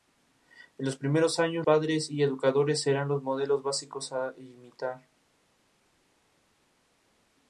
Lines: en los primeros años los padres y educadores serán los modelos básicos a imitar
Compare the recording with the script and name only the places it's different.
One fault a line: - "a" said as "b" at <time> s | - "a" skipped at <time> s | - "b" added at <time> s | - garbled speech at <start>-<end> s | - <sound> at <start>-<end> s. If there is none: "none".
- "los" skipped at 1.7 s